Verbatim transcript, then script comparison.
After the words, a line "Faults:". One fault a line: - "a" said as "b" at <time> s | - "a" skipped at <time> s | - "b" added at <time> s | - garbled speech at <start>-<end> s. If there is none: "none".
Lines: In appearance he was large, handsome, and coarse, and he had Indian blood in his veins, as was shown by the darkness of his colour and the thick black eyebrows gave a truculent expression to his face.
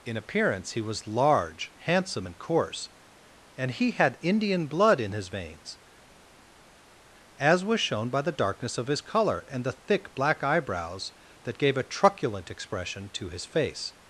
In appearance he was large, handsome, and coarse, and he had Indian blood in his veins, as was shown by the darkness of his colour and the thick black eyebrows that gave a truculent expression to his face.
Faults:
- "that" added at 11.4 s